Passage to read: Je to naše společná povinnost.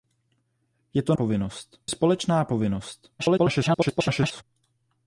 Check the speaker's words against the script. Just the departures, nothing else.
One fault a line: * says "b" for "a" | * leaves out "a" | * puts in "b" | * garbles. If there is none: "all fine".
* says "povinnost" for "naše"
* garbles